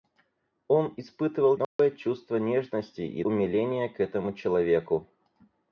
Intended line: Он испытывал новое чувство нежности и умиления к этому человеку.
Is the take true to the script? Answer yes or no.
yes